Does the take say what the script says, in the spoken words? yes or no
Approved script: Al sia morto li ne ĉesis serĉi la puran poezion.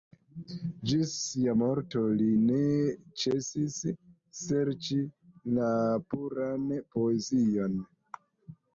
no